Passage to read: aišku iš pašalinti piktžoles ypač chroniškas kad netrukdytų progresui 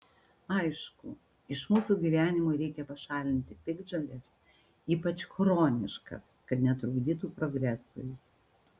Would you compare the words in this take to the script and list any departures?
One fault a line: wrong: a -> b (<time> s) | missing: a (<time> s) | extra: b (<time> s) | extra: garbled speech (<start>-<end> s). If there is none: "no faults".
extra: mūsų gyvenimo reikia (1.7 s)